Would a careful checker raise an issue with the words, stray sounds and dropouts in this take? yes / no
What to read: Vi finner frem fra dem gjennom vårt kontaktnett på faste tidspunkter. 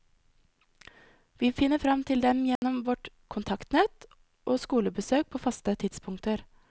yes